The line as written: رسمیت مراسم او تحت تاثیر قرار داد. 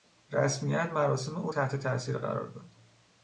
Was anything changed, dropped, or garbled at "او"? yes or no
no